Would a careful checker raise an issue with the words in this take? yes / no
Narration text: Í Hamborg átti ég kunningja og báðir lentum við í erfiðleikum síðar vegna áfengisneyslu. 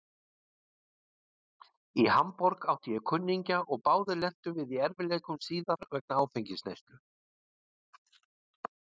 no